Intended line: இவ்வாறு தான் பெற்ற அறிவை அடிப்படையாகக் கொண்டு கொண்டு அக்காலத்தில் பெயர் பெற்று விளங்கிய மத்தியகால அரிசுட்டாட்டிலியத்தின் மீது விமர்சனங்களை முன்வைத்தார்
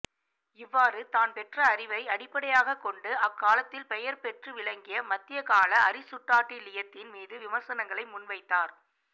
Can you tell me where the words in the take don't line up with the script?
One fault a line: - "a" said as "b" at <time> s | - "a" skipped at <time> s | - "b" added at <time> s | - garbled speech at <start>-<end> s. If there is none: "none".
- "கொண்டு" skipped at 3.1 s